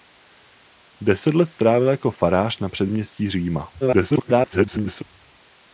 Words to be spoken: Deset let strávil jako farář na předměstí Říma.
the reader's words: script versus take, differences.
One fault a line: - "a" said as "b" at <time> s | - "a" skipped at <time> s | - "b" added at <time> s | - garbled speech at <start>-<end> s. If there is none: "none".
- garbled speech at 3.8-5.0 s